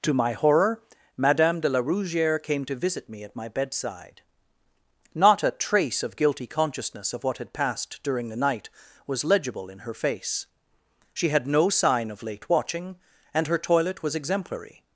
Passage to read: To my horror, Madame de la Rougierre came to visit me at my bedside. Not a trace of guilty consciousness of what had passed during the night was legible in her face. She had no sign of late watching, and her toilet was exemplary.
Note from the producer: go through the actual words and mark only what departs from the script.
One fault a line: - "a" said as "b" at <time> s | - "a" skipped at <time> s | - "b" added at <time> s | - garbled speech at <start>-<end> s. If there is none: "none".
none